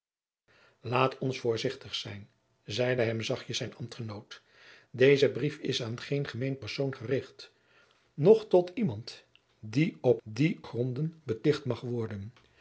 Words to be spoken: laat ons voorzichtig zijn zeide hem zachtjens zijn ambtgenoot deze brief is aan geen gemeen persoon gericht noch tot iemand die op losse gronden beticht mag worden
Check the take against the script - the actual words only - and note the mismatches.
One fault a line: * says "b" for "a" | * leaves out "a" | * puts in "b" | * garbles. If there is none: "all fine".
* says "die" for "losse"